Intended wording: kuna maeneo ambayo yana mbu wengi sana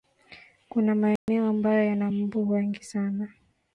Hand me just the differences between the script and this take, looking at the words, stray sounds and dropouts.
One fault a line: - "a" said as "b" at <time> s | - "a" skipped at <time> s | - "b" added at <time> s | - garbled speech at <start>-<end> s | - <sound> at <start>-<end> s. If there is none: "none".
- dropout at 1.2-1.3 s